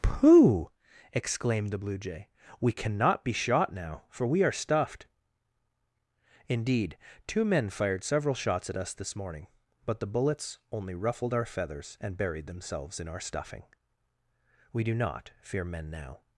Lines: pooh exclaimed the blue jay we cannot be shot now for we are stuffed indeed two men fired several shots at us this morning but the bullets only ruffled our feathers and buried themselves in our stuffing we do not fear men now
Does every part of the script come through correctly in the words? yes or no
yes